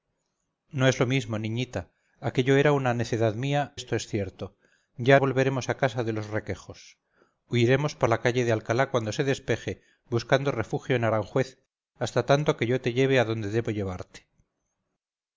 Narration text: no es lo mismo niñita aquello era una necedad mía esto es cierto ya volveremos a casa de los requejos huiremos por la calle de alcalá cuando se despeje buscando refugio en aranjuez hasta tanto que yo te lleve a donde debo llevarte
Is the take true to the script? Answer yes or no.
yes